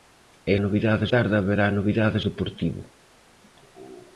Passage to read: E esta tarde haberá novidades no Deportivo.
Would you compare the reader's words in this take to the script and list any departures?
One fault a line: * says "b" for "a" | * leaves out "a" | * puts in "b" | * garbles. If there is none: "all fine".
* says "novidades" for "esta"
* leaves out "no"